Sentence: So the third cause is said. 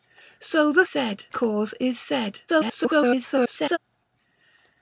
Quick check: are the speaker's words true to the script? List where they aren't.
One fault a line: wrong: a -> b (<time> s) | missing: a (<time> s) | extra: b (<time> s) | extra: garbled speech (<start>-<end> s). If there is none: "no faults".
wrong: third -> said (0.8 s)
extra: garbled speech (2.5-3.8 s)